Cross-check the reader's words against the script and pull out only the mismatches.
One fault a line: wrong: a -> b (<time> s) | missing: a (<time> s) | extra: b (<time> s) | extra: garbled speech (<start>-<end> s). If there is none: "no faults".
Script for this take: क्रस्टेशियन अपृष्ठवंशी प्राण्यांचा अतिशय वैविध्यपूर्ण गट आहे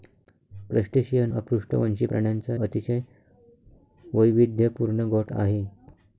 no faults